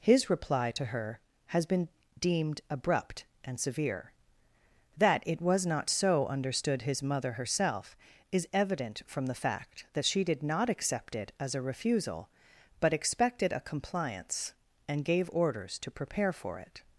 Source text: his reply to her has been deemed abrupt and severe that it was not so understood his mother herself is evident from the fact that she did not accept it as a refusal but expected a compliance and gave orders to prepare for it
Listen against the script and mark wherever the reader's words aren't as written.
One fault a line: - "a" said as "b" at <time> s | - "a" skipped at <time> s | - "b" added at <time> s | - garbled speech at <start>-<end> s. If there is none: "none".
none